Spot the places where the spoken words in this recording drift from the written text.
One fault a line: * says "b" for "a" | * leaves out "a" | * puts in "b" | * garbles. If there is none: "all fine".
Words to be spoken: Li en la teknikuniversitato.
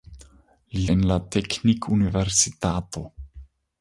all fine